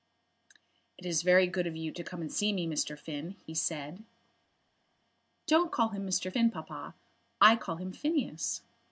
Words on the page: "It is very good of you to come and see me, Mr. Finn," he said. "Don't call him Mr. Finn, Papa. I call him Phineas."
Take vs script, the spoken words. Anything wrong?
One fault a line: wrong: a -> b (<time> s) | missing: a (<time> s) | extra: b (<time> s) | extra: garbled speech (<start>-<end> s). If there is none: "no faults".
no faults